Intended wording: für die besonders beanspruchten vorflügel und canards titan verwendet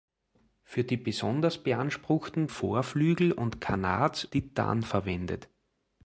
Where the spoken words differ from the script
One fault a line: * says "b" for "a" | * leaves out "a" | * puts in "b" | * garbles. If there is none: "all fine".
all fine